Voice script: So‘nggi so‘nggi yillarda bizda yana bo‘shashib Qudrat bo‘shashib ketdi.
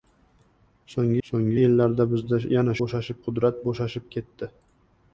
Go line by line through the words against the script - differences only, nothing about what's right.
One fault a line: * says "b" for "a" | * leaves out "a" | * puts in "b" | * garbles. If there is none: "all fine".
all fine